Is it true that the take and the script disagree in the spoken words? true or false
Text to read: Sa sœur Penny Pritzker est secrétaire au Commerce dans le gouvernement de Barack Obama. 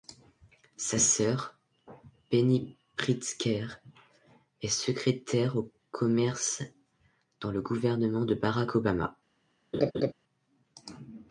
false